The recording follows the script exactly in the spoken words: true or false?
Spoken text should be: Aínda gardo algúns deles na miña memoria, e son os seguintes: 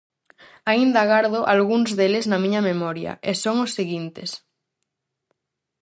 true